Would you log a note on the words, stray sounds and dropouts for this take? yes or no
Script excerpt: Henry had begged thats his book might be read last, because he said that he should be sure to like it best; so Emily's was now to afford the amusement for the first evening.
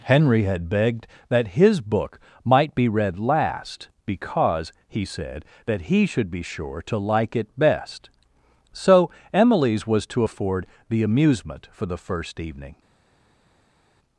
yes